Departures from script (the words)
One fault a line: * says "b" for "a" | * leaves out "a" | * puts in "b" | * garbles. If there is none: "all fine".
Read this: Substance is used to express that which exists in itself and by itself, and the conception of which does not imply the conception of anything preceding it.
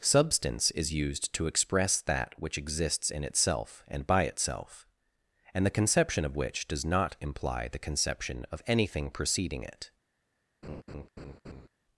all fine